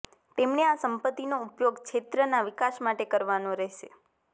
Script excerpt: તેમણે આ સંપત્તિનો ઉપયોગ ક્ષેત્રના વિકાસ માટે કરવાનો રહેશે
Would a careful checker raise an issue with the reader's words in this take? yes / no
no